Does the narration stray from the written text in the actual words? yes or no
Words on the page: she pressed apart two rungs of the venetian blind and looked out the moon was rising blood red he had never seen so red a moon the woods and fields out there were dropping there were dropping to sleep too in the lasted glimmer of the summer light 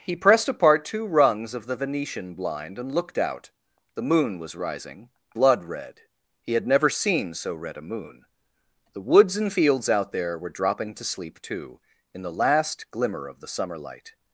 yes